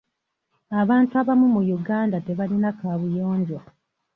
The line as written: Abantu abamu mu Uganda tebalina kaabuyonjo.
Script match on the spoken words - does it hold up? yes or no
yes